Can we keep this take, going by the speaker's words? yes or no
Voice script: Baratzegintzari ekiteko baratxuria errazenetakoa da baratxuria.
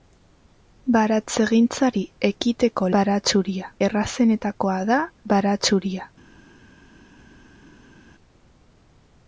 yes